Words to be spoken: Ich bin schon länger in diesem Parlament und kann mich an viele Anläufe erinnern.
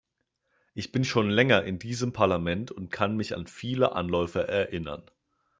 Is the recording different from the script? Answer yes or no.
no